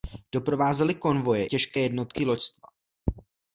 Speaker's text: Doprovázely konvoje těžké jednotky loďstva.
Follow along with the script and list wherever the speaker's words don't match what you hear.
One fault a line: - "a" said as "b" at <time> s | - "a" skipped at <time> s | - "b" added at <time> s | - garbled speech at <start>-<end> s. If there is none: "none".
none